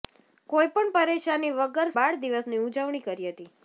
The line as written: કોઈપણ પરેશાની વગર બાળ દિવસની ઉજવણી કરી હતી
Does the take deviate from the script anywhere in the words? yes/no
no